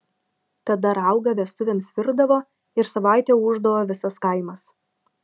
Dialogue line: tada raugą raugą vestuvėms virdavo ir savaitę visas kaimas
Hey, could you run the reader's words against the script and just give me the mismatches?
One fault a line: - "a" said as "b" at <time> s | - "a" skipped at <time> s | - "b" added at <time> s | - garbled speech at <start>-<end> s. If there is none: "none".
- "raugą" skipped at 1.3 s
- "ūždavo" added at 3.5 s